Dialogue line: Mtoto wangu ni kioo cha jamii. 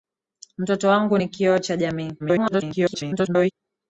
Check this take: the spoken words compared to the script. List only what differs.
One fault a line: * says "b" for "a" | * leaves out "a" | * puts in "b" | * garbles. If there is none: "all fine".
* garbles